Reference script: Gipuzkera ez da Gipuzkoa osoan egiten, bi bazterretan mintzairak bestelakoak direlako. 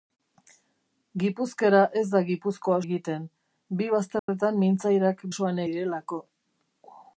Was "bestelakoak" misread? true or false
true